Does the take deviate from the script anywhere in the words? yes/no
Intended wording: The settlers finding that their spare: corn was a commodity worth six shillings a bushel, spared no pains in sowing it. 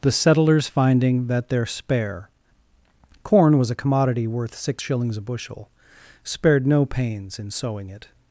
no